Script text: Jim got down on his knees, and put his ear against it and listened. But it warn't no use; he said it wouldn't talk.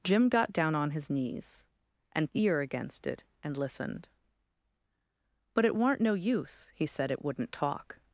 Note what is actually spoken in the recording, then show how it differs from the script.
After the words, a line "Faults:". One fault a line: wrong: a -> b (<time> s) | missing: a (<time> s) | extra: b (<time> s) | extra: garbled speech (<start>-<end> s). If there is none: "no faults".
Jim got down on his knees, and ear against it and listened. But it warn't no use; he said it wouldn't talk.
Faults:
missing: put his (2.3 s)